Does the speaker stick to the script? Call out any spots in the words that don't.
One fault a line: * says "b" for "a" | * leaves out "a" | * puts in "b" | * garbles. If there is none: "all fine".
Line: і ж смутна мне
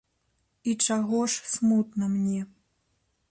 * puts in "чаго"